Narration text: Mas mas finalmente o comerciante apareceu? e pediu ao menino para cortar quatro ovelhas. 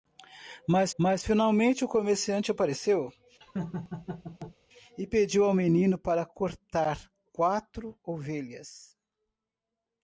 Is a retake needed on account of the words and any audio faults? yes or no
yes